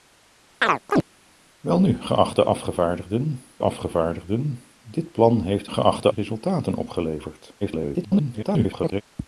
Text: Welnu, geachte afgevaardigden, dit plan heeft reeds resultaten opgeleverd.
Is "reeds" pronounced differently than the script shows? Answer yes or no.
yes